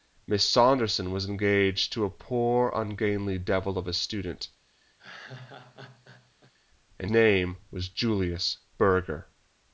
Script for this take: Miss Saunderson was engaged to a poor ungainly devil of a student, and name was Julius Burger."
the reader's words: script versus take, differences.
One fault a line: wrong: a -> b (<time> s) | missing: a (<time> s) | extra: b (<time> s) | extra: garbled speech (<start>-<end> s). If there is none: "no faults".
no faults